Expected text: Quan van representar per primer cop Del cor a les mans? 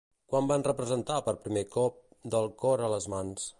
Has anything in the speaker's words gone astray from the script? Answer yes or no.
no